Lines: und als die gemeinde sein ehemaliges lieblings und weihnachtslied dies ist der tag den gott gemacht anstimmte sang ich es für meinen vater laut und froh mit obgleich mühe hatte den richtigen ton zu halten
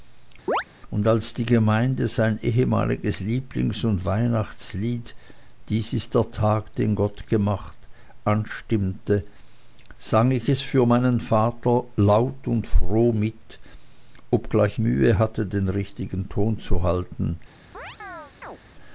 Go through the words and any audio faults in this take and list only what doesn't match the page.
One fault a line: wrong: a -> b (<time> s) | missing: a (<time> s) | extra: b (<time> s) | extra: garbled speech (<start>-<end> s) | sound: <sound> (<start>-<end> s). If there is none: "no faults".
sound: chirp (0.5-0.6 s)
sound: chirp (17.7-18.6 s)